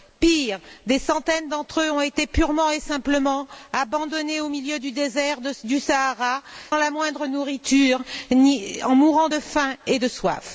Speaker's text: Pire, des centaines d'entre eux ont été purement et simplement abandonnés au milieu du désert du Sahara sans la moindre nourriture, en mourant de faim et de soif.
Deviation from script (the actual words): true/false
true